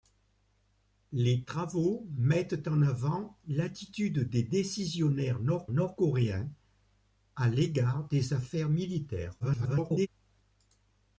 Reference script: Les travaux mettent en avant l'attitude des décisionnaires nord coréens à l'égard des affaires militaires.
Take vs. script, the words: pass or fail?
fail